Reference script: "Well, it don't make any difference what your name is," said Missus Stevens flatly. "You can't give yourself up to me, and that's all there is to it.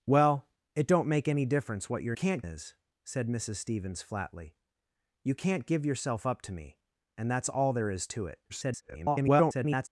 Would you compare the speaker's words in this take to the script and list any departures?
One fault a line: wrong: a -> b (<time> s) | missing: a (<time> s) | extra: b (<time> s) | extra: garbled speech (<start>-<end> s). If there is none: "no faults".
wrong: name -> can't (2.1 s)
extra: garbled speech (8.5-9.9 s)